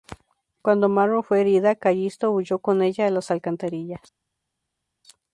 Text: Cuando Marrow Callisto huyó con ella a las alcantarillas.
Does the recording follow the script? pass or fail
fail